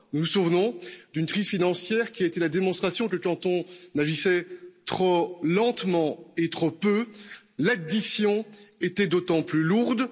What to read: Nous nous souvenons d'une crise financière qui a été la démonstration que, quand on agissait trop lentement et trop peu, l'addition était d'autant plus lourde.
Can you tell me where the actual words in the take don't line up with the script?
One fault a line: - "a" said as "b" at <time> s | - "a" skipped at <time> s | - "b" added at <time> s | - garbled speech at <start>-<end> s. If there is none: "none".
none